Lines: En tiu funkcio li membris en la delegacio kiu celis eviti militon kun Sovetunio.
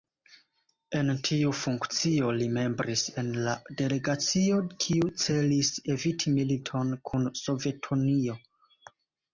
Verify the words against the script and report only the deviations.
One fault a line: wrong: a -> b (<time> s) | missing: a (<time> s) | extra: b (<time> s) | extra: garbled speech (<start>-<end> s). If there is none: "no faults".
no faults